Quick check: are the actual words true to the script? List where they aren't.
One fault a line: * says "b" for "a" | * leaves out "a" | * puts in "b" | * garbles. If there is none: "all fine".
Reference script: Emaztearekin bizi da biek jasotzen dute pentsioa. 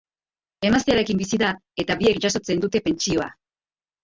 * puts in "eta"